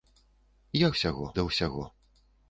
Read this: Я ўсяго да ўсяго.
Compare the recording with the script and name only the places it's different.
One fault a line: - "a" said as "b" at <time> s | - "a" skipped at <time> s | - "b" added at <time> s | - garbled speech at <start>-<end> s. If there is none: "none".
none